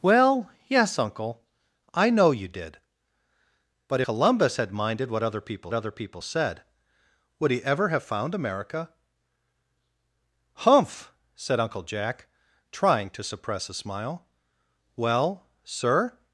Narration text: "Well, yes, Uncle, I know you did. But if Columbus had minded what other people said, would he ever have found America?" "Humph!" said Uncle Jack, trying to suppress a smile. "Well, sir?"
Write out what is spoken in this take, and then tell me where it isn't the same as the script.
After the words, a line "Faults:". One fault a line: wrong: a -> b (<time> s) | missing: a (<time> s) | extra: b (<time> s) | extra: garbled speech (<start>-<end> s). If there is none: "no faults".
"Well, yes, Uncle, I know you did. But Columbus had minded what other people other people said, would he ever have found America?" "Humph!" said Uncle Jack, trying to suppress a smile. "Well, sir?"
Faults:
missing: if (4.0 s)
extra: other people (5.7 s)